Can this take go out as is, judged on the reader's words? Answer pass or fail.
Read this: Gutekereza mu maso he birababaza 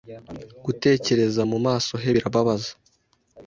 pass